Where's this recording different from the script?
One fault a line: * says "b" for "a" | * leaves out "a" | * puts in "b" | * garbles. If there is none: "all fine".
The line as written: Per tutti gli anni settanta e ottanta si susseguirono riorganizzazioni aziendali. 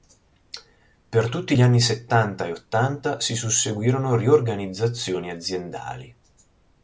all fine